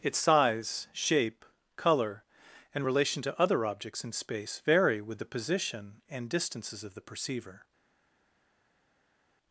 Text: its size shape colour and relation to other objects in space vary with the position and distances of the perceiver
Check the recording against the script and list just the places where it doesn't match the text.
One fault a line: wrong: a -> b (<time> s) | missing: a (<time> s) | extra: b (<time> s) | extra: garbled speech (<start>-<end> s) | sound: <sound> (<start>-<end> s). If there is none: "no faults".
no faults